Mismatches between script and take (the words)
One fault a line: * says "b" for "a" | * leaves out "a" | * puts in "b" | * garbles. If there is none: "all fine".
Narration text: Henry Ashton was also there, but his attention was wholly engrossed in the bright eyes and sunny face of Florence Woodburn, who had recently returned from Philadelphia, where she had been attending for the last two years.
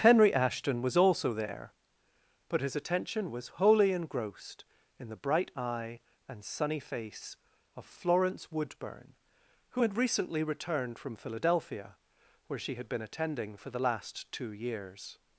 * says "eye" for "eyes"